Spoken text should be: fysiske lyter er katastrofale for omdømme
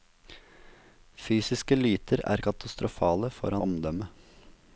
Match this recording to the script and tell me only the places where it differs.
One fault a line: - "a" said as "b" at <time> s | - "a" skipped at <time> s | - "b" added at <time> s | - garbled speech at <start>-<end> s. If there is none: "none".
none